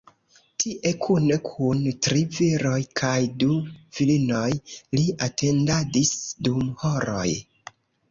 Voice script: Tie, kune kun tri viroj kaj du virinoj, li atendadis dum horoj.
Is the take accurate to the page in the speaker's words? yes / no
yes